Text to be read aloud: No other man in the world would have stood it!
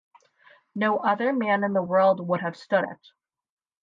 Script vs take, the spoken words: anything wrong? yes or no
no